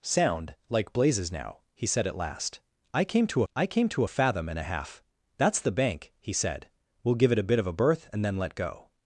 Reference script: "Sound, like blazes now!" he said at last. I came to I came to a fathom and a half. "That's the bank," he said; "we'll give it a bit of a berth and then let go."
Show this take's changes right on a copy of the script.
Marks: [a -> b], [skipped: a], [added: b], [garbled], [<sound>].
"Sound, like blazes now!" he said at last. I came to I came to a fathom and a half. "That's the bank," he said; "we'll give it a bit of a berth and then let go."